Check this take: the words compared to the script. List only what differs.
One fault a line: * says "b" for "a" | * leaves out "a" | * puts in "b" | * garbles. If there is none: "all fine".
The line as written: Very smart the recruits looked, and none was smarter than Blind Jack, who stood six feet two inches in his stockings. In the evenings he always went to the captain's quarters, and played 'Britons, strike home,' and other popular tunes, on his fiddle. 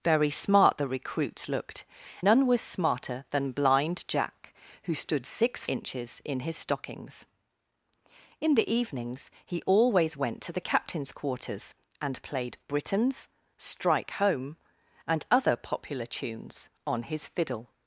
* leaves out "and"
* leaves out "feet two"